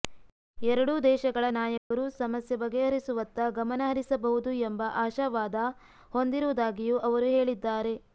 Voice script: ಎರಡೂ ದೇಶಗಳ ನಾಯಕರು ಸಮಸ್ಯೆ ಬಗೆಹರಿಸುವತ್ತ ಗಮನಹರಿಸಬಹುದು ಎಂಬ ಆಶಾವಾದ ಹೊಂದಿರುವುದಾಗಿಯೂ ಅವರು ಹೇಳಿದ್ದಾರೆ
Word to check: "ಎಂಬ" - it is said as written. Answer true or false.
true